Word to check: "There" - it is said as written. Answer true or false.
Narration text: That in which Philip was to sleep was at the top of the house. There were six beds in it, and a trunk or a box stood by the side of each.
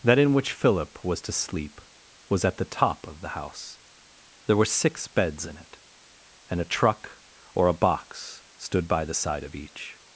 true